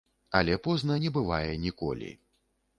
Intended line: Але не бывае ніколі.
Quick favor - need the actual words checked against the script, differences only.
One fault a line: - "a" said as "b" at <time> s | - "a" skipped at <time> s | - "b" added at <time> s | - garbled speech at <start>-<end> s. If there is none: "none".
- "позна" added at 0.7 s